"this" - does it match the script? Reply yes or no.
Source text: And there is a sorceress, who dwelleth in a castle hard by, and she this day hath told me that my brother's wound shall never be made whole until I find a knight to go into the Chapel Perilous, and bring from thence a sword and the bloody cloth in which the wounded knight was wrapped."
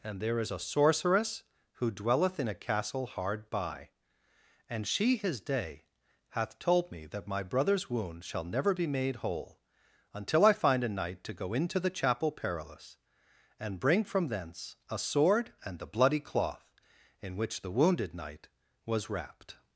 no